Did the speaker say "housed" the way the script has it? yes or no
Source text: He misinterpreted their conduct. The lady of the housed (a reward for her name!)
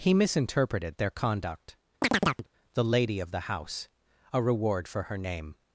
no